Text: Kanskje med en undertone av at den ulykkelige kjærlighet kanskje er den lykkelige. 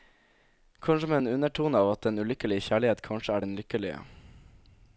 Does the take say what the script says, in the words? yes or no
yes